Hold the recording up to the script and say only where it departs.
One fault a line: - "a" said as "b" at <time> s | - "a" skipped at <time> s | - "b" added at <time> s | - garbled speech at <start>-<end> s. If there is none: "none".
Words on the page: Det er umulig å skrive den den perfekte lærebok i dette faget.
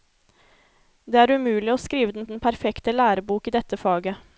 none